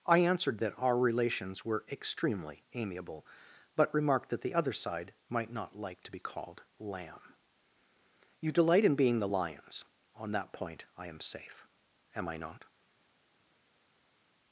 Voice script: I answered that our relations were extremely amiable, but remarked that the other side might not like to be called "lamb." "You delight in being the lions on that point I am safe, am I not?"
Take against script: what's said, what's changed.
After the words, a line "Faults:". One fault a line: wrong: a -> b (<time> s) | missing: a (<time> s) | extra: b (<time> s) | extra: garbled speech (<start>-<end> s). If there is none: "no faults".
I answered that our relations were extremely amiable, but remarked that the other side might not like to be called "lamb." "You delight in being the lions on that point I am safe, am I not?"
Faults:
no faults